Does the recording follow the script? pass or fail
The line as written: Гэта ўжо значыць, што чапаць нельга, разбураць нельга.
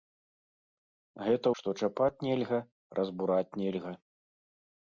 fail